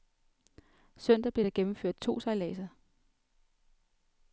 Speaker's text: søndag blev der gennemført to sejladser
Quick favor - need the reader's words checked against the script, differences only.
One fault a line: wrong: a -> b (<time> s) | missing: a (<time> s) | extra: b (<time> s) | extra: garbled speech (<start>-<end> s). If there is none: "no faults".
no faults